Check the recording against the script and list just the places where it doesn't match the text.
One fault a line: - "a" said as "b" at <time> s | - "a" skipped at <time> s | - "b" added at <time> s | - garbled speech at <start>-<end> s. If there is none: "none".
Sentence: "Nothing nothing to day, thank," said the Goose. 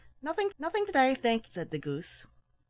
none